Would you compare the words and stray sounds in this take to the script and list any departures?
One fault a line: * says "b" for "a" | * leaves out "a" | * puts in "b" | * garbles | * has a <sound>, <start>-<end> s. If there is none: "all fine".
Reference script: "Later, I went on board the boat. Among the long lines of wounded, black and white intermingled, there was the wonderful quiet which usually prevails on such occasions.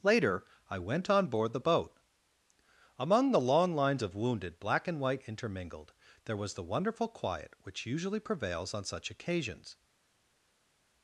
all fine